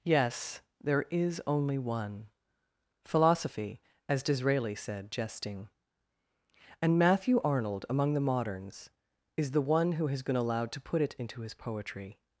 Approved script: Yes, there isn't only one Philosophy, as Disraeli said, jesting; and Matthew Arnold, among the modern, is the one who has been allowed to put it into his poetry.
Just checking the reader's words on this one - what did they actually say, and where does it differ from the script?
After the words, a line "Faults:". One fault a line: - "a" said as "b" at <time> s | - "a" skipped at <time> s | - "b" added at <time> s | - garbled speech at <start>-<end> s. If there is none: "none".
Yes, there is only one Philosophy, as Disraeli said, jesting; and Matthew Arnold, among the moderns, is the one who has been allowed to put it into his poetry.
Faults:
- "isn't" said as "is" at 1.1 s
- "modern" said as "moderns" at 8.2 s